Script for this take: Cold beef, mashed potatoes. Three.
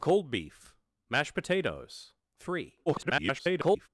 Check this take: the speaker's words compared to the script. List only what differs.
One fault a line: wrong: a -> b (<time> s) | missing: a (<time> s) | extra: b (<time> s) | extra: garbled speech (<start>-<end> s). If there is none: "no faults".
extra: garbled speech (2.9-3.9 s)